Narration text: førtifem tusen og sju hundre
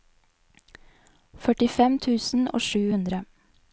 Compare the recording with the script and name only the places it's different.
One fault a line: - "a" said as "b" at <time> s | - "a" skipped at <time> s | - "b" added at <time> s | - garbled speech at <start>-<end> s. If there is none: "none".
none